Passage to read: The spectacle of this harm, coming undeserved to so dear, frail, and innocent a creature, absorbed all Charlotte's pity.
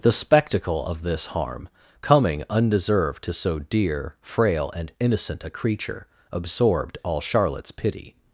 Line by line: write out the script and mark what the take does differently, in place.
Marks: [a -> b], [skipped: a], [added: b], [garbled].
The spectacle of this harm, coming undeserved to so dear, frail, and innocent a creature, absorbed all Charlotte's pity.